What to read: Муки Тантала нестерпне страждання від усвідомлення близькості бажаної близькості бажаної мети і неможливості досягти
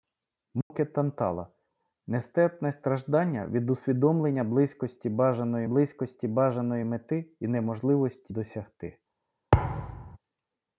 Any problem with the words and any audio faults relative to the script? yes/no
yes